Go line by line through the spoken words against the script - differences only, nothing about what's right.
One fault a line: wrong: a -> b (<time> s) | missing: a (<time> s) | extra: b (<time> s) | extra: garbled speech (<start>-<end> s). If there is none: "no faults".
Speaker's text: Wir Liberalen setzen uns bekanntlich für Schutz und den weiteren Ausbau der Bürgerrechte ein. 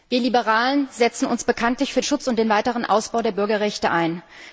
no faults